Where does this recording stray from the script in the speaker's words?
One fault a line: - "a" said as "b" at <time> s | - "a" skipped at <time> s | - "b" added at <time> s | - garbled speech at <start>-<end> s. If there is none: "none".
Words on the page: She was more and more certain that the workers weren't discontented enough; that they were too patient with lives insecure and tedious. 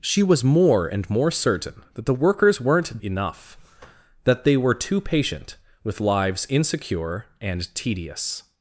- "discontented" skipped at 3.0 s